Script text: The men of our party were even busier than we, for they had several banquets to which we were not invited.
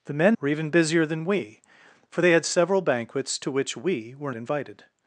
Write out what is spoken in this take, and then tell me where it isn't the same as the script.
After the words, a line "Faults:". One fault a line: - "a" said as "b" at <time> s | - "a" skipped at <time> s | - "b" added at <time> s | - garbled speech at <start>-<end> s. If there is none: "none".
The men were even busier than we, for they had several banquets to which we were invited.
Faults:
- "of our party" skipped at 0.4 s
- "not" skipped at 4.3 s